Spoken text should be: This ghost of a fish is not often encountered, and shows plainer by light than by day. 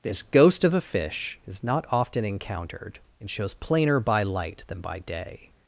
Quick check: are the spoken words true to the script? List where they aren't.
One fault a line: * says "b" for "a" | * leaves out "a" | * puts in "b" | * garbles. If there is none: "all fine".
all fine